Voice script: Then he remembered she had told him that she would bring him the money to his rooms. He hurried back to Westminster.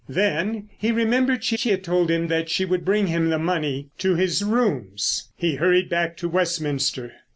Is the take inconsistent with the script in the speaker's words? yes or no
yes